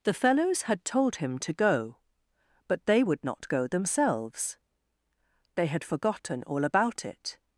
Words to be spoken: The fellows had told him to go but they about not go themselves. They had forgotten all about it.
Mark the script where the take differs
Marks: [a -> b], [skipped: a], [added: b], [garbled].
The fellows had told him to go but they [about -> would] not go themselves. They had forgotten all about it.